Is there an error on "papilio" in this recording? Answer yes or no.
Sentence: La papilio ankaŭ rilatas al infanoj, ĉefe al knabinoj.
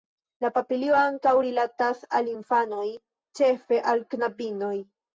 no